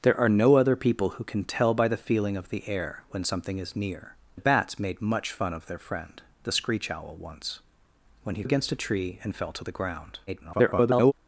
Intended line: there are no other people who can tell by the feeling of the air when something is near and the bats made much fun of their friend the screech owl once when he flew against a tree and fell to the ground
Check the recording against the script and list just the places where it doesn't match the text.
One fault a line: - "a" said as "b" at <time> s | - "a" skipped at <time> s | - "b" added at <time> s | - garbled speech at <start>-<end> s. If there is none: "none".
- "and" skipped at 4.2 s
- "flew" skipped at 8.4 s
- garbled speech at 10.3-11.1 s